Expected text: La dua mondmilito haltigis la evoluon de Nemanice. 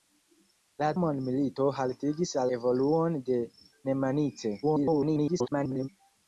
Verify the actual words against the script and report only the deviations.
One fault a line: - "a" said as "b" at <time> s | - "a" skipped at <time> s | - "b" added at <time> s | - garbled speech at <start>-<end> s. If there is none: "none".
- "dua" skipped at 0.9 s
- "la" skipped at 2.4 s
- garbled speech at 4.6-5.9 s